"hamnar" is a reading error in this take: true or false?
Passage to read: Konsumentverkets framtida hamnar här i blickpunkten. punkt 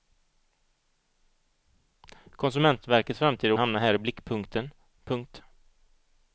false